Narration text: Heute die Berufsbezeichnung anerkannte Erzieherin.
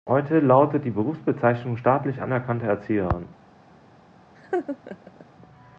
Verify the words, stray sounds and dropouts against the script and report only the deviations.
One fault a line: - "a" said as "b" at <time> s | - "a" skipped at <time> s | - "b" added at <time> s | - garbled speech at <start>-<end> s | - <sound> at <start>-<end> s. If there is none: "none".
- "lautet" added at 0.4 s
- "staatlich" added at 1.7 s
- laugh at 4.4-5.3 s